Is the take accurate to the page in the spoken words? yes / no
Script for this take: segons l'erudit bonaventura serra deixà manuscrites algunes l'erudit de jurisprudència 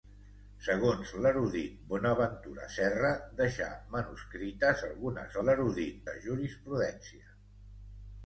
yes